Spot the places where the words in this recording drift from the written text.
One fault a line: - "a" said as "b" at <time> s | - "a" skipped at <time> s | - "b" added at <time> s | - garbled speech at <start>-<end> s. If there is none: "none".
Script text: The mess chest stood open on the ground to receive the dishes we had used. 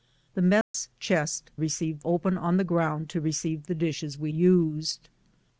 - "stood" said as "receive" at 1.6 s
- "had" skipped at 4.3 s